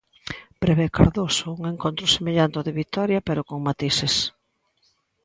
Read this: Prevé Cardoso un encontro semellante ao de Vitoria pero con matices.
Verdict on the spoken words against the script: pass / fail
pass